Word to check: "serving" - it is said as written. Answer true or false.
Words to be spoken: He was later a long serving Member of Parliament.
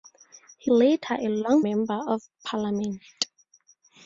false